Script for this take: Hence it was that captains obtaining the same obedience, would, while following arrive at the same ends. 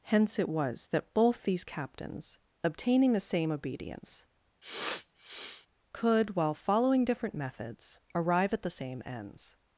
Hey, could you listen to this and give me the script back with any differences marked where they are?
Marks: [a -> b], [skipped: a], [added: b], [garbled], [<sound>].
Hence it was that [added: both these] captains obtaining the same obedience, [sniff] [would, -> could] while following [added: different methods] arrive at the same ends.